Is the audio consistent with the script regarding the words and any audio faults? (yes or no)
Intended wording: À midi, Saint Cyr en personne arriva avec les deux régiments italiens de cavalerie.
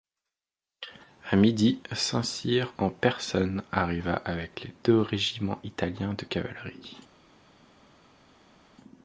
yes